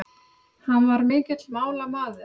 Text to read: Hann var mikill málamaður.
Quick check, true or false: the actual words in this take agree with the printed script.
true